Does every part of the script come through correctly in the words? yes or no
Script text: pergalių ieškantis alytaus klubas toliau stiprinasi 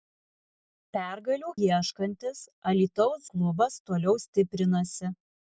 yes